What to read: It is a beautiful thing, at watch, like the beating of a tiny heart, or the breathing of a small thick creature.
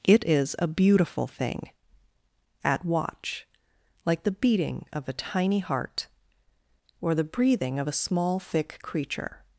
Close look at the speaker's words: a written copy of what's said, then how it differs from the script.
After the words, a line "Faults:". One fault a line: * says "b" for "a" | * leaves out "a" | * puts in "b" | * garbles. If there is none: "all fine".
It is a beautiful thing, at watch, like the beating of a tiny heart, or the breathing of a small thick creature.
Faults:
all fine